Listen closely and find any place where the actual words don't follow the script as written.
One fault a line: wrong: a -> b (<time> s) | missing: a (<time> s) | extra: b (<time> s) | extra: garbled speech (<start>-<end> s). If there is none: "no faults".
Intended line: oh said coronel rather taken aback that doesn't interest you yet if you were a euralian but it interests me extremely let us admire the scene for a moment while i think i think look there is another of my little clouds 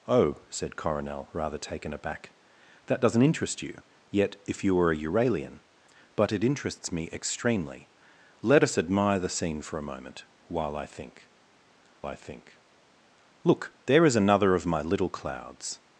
no faults